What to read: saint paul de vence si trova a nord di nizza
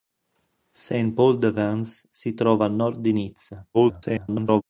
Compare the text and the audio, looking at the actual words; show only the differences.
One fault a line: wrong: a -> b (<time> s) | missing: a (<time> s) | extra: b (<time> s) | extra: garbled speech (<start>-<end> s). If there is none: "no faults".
extra: garbled speech (3.7-4.6 s)